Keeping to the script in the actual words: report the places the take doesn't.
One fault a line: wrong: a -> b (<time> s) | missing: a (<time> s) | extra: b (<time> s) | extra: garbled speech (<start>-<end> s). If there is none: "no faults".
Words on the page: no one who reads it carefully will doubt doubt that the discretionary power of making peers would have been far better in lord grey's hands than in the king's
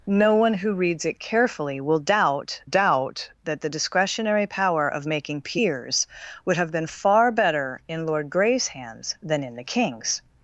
no faults